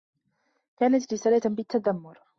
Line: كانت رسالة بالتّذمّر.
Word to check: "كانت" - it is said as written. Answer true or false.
true